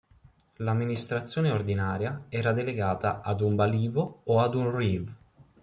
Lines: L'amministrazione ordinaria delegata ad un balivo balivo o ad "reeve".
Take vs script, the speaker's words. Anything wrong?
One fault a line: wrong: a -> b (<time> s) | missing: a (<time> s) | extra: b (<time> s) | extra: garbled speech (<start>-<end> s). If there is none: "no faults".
extra: era (2.3 s)
missing: balivo (4.2 s)
extra: un (4.5 s)